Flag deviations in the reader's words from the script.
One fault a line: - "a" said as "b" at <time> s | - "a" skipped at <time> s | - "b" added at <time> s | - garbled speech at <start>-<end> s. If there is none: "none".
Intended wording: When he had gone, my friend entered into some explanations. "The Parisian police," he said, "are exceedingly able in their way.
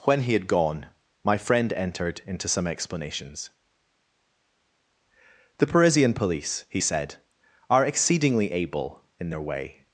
none